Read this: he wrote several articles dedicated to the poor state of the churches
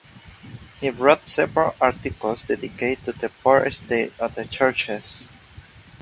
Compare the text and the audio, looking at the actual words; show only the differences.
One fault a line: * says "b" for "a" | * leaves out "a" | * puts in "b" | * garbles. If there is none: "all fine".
all fine